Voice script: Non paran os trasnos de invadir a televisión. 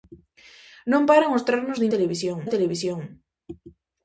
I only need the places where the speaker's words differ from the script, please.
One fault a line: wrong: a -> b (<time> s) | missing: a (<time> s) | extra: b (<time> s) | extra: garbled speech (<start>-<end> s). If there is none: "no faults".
wrong: invadir -> televisión (1.9 s)